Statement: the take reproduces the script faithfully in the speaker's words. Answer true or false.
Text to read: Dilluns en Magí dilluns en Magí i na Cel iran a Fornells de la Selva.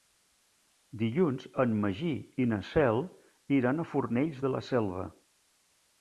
false